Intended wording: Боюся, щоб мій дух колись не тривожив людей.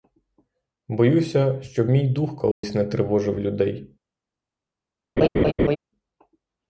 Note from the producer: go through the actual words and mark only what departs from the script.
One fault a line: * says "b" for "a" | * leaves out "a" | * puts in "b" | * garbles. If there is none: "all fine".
all fine